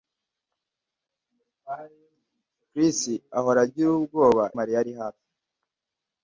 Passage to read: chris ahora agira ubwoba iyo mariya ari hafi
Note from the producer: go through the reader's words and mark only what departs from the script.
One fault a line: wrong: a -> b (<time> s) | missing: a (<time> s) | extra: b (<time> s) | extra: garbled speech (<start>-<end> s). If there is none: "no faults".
missing: iyo (4.4 s)